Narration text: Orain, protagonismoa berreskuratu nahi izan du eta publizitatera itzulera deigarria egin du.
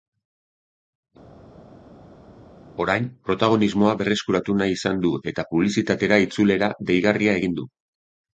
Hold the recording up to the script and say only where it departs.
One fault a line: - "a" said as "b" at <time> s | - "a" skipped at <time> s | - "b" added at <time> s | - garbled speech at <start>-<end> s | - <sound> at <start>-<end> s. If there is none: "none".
none